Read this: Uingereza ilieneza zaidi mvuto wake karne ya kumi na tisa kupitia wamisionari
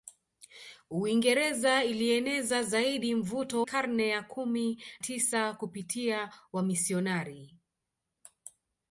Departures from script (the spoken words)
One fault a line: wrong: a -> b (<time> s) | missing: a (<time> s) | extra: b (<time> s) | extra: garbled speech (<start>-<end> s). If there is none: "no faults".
missing: wake (3.6 s)
missing: na (4.8 s)